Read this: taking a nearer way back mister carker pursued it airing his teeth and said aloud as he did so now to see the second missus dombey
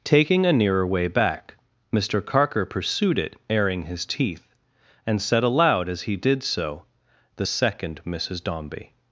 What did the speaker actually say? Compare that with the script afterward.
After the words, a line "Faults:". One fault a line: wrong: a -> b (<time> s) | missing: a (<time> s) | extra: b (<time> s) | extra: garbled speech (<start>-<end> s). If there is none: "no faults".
taking a nearer way back mister carker pursued it airing his teeth and said aloud as he did so the second missus dombey
Faults:
missing: now to see (6.8 s)